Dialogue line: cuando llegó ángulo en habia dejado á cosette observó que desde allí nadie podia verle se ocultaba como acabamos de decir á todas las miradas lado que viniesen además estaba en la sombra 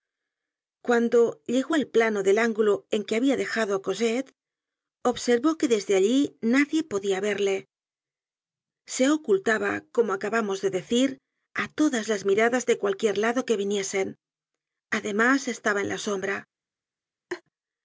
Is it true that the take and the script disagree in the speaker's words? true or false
true